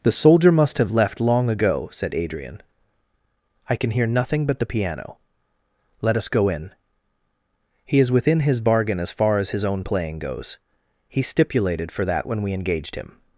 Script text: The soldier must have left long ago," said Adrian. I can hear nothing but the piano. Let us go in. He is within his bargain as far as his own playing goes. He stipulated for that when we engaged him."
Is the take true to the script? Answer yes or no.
yes